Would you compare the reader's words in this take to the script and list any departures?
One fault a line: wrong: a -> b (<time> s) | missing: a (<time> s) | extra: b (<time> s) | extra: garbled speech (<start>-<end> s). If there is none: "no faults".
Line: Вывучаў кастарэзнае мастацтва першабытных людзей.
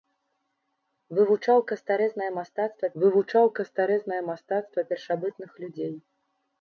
extra: вывучаў кастарэзнае мастацтва (3.0 s)